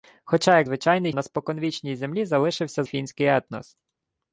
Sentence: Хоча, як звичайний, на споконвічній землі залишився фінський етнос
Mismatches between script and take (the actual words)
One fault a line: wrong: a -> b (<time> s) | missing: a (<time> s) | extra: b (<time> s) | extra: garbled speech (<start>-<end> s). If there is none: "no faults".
no faults